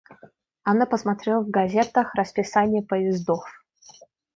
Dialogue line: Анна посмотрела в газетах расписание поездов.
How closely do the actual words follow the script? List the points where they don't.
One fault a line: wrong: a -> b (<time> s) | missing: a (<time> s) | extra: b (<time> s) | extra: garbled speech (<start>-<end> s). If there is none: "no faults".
no faults